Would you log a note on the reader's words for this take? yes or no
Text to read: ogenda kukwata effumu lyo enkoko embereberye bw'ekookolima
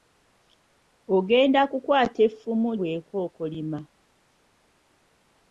yes